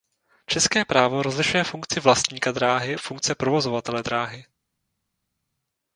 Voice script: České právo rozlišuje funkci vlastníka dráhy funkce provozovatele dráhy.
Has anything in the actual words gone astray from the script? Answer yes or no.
no